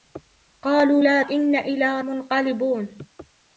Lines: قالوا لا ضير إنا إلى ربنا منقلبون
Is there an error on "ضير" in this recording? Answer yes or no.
yes